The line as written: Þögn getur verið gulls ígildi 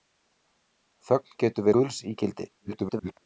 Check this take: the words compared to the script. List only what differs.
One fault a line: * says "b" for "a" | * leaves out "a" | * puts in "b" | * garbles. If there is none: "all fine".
* leaves out "verið"
* garbles